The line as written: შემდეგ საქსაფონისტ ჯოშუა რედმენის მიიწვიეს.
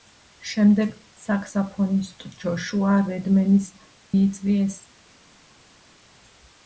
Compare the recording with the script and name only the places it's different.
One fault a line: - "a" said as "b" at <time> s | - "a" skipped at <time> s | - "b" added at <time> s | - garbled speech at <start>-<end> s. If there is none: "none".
none